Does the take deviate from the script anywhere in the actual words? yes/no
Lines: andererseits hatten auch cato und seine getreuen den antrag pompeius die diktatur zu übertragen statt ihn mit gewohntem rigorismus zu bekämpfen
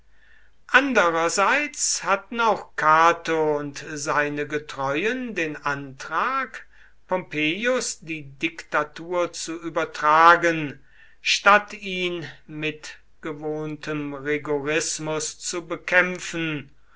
no